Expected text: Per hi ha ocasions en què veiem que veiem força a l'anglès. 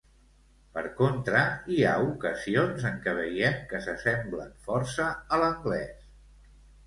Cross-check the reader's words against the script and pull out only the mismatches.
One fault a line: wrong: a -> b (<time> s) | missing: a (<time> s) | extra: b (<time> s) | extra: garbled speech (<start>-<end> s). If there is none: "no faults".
extra: contra (1.0 s)
wrong: veiem -> s'assemblen (3.9 s)